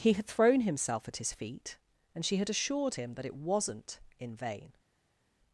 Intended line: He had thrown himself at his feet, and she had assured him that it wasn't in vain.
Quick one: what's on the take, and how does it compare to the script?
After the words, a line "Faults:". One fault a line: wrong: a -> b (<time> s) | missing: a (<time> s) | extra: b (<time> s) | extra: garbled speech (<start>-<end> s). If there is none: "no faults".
He had thrown himself at his feet, and she had assured him that it wasn't in vain.
Faults:
no faults